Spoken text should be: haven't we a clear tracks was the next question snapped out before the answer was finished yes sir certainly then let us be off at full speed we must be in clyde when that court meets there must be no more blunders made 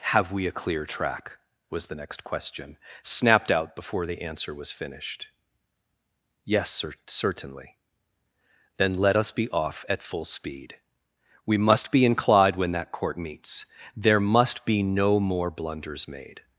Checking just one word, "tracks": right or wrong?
wrong